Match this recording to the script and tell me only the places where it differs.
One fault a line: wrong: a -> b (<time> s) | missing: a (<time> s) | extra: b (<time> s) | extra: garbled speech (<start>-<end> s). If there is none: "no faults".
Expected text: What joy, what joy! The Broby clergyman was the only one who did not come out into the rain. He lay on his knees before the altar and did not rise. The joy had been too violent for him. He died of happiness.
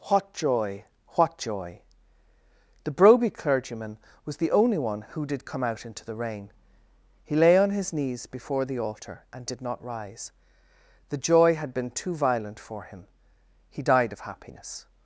missing: not (5.5 s)